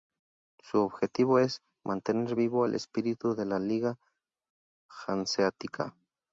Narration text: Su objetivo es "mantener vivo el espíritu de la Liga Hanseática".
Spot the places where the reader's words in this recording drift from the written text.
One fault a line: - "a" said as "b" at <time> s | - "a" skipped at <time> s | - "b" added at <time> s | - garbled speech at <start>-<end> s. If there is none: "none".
none